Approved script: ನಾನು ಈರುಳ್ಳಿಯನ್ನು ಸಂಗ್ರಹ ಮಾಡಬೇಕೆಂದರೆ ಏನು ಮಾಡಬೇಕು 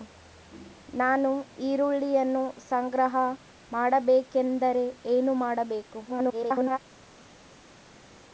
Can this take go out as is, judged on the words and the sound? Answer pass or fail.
fail